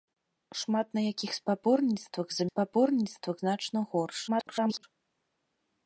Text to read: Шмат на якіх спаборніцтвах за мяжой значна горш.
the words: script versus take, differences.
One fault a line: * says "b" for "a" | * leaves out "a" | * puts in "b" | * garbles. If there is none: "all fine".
* says "спаборніцтвах" for "мяжой"
* garbles